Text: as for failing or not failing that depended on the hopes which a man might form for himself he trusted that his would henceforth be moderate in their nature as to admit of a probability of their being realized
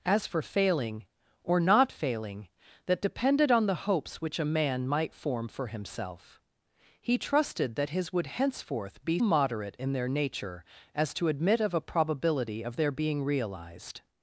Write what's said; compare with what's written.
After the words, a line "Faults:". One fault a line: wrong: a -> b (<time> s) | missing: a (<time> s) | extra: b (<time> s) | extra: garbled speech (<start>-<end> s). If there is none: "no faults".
as for failing or not failing that depended on the hopes which a man might form for himself he trusted that his would henceforth be moderate in their nature as to admit of a probability of their being realized
Faults:
no faults